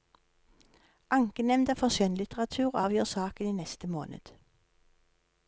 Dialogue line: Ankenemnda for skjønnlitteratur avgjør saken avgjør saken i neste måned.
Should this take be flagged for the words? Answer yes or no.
yes